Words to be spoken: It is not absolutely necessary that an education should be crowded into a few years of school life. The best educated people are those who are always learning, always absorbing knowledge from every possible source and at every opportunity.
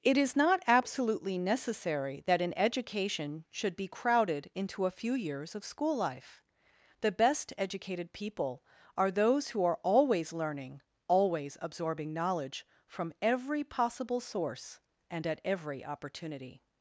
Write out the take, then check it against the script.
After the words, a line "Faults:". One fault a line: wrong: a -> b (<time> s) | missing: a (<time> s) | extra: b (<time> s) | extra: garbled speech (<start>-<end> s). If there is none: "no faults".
It is not absolutely necessary that an education should be crowded into a few years of school life. The best educated people are those who are always learning, always absorbing knowledge from every possible source and at every opportunity.
Faults:
no faults